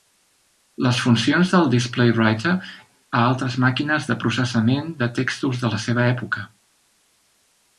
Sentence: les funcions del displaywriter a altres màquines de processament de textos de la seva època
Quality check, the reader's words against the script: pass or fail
pass